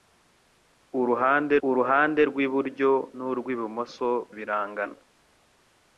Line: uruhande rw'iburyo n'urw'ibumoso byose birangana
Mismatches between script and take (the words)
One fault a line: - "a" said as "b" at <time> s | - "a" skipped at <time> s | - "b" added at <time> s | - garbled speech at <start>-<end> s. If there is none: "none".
- "uruhande" added at 1.7 s
- "byose" skipped at 4.1 s